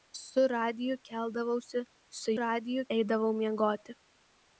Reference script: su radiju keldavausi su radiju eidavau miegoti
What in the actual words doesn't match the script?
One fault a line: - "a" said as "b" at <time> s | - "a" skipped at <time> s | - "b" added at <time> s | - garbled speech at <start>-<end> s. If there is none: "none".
none